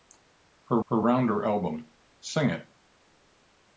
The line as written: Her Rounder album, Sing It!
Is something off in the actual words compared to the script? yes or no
yes